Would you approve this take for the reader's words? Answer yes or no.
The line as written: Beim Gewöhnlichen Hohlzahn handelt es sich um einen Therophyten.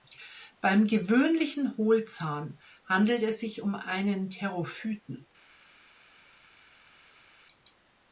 yes